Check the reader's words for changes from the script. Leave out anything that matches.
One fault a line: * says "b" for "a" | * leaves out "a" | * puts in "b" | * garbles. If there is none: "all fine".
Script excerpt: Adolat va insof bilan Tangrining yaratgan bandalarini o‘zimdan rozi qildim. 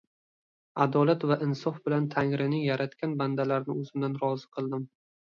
all fine